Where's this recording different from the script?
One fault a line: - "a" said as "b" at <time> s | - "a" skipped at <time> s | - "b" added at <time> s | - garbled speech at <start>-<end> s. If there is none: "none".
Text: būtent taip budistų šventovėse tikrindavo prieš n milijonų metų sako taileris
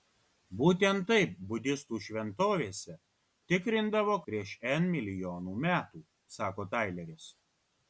none